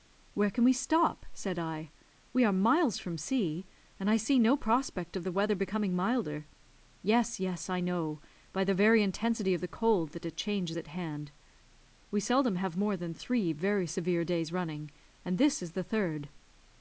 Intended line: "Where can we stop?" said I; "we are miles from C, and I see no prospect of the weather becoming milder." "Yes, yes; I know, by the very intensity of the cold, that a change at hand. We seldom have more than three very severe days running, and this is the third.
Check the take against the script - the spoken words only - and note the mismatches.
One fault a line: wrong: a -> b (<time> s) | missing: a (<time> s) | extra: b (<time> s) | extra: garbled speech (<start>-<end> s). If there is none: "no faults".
no faults